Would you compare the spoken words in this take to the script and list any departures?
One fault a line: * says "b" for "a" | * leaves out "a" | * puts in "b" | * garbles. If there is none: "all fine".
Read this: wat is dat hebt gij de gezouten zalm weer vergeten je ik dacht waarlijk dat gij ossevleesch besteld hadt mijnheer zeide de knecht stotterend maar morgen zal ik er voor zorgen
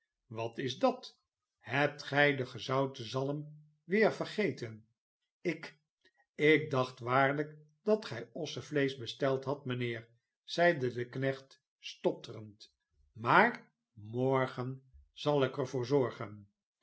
* says "ik" for "je"